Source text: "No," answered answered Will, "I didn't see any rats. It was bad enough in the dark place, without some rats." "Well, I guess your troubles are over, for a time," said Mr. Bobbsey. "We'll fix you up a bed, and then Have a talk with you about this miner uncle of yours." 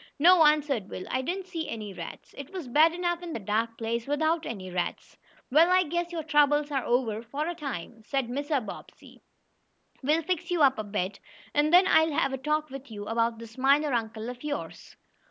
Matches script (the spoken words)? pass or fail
fail